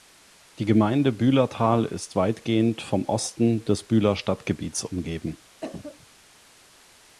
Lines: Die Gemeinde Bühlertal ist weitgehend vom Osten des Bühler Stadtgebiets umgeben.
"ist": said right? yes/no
yes